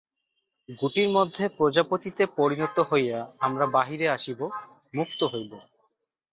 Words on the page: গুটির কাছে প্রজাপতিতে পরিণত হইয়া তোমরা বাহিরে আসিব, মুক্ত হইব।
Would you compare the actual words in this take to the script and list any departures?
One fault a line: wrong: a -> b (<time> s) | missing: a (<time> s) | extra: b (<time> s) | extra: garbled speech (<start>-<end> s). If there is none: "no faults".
wrong: কাছে -> মধ্যে (1.1 s)
wrong: তোমরা -> আমরা (3.4 s)